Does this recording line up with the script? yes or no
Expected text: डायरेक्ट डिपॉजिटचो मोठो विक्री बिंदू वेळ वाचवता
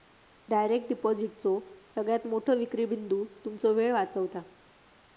no